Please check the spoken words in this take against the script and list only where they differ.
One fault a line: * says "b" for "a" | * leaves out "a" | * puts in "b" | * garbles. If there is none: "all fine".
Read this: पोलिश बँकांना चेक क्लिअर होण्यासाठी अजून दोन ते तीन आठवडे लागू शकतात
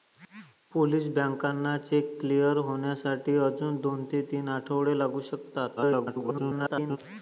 * garbles